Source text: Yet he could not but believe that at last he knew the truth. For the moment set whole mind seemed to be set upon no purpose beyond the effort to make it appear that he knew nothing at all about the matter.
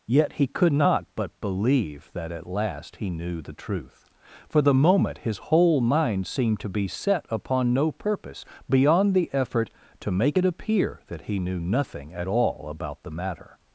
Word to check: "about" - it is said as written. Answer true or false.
true